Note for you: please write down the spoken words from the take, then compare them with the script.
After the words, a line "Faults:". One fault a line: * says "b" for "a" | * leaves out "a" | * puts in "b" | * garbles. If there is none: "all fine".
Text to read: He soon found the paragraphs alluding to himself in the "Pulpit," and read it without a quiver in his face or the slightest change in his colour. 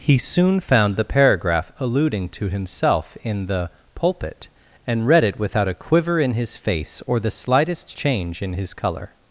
He soon found the paragraph alluding to himself in the "Pulpit," and read it without a quiver in his face or the slightest change in his colour.
Faults:
* says "paragraph" for "paragraphs"